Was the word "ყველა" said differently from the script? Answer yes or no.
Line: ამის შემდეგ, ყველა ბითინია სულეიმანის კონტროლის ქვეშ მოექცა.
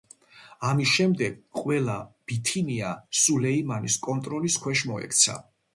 no